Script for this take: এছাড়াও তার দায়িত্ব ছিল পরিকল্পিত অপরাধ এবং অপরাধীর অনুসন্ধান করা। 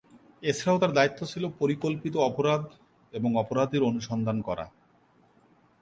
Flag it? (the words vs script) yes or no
no